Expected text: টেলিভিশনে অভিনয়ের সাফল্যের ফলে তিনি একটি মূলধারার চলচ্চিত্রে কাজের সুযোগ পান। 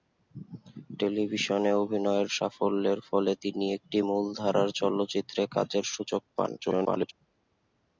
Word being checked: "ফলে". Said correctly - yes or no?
yes